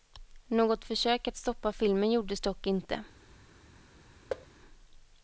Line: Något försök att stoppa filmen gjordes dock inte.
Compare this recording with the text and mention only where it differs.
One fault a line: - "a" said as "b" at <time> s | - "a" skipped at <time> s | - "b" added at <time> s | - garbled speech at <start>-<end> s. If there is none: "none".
none